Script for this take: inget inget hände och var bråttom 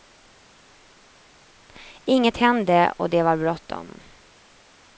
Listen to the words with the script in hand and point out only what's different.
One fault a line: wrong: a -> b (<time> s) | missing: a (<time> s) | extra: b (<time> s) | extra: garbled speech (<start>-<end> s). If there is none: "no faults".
missing: inget (2.4 s)
extra: det (3.1 s)